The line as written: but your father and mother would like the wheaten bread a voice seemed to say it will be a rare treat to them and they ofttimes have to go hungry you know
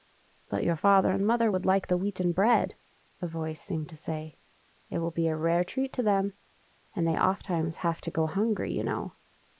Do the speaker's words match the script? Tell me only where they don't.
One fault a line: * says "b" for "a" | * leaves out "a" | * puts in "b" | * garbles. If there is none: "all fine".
all fine